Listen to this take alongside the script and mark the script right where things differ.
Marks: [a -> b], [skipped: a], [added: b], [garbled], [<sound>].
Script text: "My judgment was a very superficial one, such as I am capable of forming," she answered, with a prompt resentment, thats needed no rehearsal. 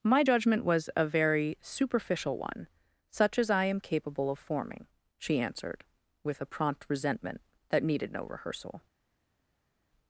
"My judgment was a very superficial one, such as I am capable of forming," she answered, with a prompt resentment, [thats -> that] needed no rehearsal.